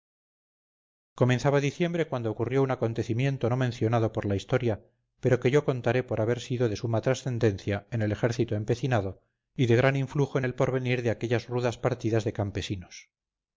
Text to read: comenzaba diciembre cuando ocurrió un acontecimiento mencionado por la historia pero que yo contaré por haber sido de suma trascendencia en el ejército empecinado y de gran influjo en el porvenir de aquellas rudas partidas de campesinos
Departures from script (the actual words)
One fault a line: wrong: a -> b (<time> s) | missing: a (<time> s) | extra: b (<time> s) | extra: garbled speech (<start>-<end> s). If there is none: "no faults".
extra: no (3.5 s)